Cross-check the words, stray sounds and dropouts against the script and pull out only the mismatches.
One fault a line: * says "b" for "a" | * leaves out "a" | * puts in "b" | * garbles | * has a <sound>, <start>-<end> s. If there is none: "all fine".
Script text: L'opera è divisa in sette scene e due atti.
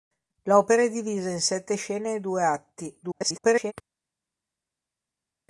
* garbles